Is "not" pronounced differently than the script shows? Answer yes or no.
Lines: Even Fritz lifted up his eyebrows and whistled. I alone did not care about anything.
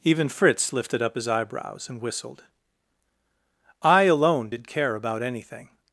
yes